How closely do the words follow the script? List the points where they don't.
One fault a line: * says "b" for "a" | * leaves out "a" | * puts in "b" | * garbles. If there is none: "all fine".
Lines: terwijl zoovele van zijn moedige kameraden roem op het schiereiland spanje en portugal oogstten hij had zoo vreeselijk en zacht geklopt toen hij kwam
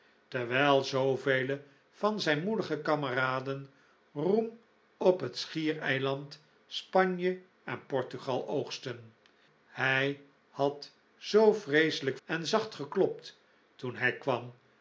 all fine